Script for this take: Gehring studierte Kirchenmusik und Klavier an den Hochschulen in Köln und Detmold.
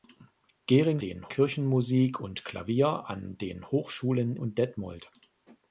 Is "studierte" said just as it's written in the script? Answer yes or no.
no